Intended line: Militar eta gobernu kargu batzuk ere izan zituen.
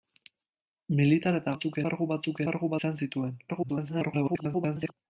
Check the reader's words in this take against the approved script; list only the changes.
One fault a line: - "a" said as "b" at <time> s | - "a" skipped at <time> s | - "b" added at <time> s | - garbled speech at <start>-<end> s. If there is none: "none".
- "gobernu" said as "batzuk" at 1.5 s
- "ere" said as "kargu" at 2.5 s
- garbled speech at 3.5-4.9 s